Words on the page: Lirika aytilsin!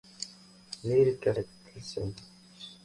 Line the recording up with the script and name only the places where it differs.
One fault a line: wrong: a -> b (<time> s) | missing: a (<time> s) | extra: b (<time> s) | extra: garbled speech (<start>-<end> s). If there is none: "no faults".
no faults